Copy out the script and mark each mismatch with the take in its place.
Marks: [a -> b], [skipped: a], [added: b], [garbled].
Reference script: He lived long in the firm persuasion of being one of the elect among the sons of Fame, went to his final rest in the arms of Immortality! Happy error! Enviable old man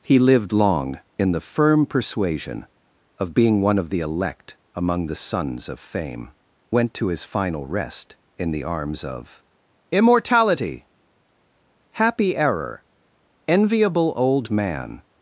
He lived long in the firm persuasion of being one of the elect among the sons of Fame, went to his final rest in the arms of Immortality! Happy error! Enviable old man